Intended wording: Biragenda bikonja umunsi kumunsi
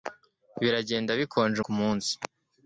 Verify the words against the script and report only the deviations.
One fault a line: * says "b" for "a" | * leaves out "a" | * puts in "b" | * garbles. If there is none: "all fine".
* leaves out "umunsi"